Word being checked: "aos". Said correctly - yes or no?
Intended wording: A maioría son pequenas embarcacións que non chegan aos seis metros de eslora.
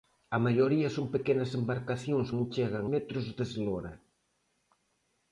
no